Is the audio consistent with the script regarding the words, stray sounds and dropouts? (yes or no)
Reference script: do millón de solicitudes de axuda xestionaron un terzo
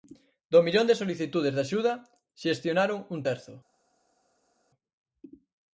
yes